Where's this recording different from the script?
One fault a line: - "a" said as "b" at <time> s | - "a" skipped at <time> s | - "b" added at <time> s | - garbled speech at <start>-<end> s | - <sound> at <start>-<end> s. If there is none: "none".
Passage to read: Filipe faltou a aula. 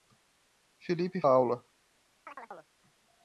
- "faltou" skipped at 1.2 s
- chirp at 2.3-2.7 s